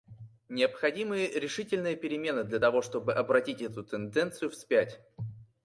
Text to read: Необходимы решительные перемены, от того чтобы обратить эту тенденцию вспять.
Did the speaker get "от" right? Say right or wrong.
wrong